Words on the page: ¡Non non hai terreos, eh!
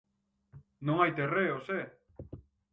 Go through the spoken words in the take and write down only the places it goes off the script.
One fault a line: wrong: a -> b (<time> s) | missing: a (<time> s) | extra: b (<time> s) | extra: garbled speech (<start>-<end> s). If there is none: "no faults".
missing: non (1.0 s)